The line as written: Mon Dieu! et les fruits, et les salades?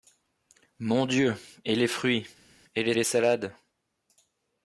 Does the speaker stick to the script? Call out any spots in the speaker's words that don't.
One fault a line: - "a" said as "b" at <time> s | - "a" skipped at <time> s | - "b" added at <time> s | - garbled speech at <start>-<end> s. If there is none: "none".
- "les" added at 2.9 s